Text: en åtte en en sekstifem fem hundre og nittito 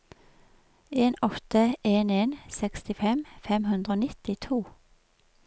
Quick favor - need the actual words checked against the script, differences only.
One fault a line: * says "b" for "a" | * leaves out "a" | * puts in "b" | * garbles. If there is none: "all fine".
all fine